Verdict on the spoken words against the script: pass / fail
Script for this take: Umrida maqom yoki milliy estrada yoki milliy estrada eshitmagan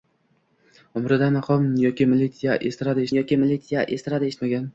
pass